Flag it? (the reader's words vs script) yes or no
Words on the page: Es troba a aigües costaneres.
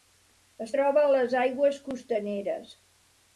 yes